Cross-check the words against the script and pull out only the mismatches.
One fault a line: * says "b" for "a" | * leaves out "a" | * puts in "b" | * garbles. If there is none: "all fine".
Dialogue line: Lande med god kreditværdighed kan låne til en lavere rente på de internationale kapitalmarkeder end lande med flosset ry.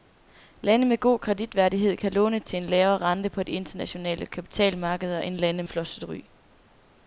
* leaves out "med"